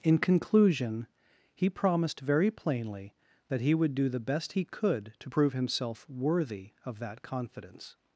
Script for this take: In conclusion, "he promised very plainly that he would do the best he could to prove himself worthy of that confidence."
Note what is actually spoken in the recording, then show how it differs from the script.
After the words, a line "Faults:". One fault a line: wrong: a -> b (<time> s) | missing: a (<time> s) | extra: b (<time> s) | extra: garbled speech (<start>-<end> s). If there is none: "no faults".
In conclusion, "he promised very plainly that he would do the best he could to prove himself worthy of that confidence."
Faults:
no faults